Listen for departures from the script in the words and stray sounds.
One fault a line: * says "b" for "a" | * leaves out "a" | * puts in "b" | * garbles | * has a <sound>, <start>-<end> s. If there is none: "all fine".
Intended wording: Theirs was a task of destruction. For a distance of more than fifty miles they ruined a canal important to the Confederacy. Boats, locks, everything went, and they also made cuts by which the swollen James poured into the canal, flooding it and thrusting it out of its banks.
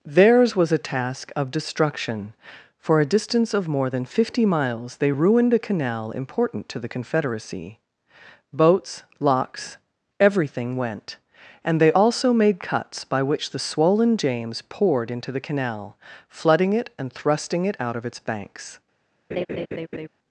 * has a laugh, 19.3-20.1 s